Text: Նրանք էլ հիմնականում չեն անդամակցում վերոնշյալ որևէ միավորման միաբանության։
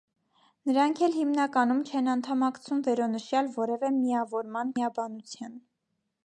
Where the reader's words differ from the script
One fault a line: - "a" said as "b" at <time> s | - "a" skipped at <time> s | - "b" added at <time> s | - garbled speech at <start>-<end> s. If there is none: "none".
none